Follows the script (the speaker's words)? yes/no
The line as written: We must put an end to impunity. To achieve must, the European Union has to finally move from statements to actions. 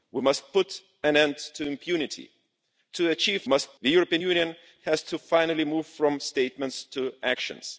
yes